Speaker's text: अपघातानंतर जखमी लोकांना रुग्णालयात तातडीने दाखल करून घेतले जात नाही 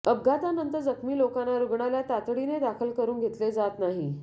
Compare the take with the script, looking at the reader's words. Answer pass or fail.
pass